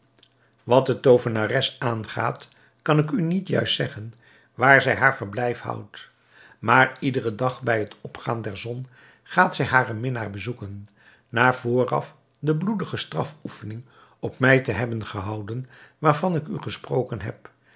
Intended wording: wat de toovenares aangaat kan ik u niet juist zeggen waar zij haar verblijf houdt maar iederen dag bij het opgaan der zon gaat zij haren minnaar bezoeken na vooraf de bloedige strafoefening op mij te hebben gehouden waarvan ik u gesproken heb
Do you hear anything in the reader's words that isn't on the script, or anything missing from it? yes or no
no